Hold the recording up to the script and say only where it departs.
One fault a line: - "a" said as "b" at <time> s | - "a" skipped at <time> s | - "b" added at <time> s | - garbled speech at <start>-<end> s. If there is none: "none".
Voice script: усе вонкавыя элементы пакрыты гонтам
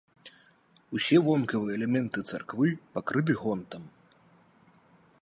- "царквы" added at 2.3 s